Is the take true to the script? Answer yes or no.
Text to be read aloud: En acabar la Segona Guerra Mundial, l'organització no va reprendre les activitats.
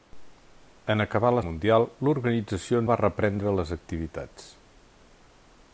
no